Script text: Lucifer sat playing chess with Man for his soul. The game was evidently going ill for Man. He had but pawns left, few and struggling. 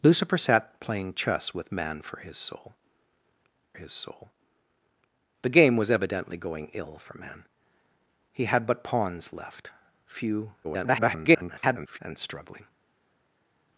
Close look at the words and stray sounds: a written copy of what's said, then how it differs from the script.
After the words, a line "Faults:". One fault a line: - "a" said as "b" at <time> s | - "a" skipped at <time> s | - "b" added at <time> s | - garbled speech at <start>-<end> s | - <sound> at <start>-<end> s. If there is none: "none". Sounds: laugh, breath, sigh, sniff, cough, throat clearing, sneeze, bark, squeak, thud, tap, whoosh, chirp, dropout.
Lucifer sat playing chess with Man for his soul his soul. The game was evidently going ill for Man. He had but pawns left, few [garbled] and struggling.
Faults:
- "his soul" added at 3.8 s
- garbled speech at 10.6-12.0 s